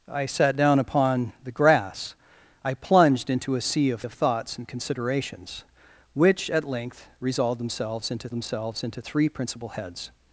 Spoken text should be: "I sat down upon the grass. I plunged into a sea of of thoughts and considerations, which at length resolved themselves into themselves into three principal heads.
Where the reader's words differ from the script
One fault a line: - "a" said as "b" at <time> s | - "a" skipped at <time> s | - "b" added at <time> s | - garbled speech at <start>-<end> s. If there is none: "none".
none